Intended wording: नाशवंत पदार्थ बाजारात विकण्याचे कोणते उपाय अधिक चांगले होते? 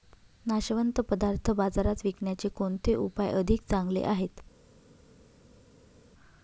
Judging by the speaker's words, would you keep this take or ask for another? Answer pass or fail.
fail